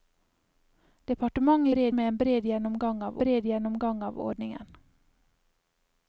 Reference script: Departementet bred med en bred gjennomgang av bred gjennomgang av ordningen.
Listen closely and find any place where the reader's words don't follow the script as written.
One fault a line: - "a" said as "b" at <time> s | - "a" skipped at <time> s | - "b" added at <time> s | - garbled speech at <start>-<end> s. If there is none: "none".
none